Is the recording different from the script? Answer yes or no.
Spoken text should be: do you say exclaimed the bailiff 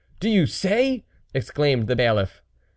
no